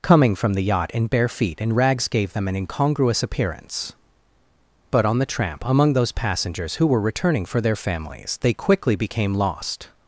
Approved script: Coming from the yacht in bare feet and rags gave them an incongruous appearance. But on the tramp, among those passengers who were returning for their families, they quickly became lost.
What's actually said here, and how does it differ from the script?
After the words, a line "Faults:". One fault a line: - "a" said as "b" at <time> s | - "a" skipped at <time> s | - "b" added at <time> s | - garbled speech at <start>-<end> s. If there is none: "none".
Coming from the yacht in bare feet and rags gave them an incongruous appearance. But on the tramp, among those passengers who were returning for their families, they quickly became lost.
Faults:
none